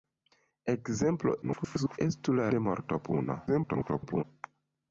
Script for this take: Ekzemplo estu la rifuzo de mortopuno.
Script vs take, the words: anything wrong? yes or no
yes